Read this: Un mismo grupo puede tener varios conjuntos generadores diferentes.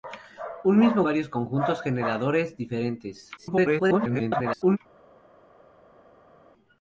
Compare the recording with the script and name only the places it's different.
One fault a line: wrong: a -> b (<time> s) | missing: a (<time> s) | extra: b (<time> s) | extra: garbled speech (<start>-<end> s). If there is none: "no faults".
missing: grupo puede tener (1.1 s)
extra: garbled speech (3.4-4.8 s)